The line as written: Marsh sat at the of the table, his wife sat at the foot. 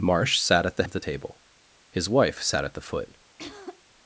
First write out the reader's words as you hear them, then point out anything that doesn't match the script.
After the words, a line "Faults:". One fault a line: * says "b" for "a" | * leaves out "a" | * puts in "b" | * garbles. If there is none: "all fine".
Marsh sat at the of the table, his wife sat at the foot.
Faults:
all fine